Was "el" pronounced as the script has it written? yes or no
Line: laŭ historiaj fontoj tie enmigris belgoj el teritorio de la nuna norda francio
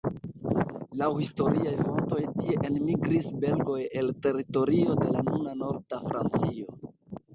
yes